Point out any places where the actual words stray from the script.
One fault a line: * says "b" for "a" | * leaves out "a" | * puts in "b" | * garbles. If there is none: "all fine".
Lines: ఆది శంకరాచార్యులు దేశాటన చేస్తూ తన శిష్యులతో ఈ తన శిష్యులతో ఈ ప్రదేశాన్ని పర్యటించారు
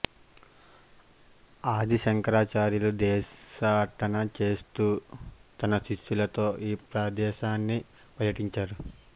* leaves out "తన శిష్యులతో ఈ"